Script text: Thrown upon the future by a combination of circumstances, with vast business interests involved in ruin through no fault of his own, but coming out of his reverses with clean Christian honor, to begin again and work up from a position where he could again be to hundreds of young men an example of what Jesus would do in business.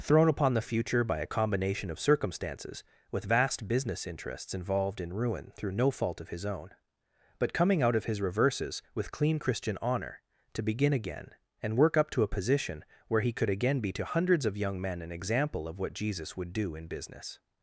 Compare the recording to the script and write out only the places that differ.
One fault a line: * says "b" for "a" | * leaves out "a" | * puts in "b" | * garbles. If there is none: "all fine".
* says "to" for "from"